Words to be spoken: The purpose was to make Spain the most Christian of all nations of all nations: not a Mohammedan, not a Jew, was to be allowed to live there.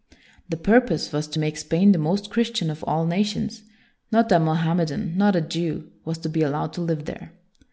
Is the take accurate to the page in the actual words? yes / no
no